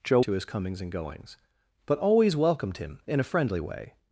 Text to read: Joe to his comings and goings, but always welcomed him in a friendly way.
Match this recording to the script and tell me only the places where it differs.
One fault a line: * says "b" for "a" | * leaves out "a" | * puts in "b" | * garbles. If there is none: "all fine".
all fine